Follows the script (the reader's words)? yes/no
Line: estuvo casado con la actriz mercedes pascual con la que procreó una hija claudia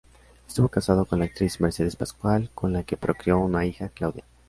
yes